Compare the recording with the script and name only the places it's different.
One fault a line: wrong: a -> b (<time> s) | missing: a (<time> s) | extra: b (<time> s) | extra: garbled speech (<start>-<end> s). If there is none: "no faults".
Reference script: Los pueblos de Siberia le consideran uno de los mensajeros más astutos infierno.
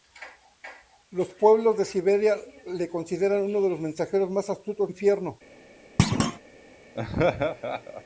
no faults